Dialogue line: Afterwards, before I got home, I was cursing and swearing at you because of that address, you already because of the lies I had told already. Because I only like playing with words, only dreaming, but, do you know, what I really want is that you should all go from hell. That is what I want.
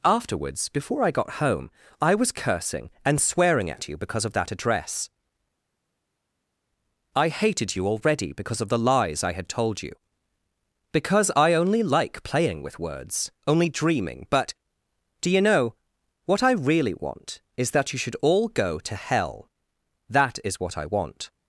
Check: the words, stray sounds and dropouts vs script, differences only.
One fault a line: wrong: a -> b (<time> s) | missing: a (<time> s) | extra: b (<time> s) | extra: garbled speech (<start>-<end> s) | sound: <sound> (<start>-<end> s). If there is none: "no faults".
extra: I hated (7.1 s)
wrong: already -> you (9.8 s)
wrong: from -> to (18.8 s)